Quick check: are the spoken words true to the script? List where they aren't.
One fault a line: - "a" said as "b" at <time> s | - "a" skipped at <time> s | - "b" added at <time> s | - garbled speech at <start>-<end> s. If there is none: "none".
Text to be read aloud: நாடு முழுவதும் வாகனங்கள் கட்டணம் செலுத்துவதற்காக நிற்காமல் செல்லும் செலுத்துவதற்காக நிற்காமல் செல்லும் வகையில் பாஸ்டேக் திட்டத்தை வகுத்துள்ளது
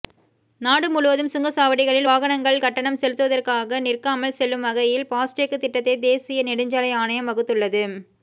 - "சுங்கச்சாவடிகளில்" added at 1.3 s
- "செலுத்துவதற்காக நிற்காமல் செல்லும் வகையில் பாஸ்டேக் திட்டத்தை" said as "வகையில் பாஸ்டேக் திட்டத்தை தேசிய நெடுஞ்சாலை ஆணையம்" at 4.7 s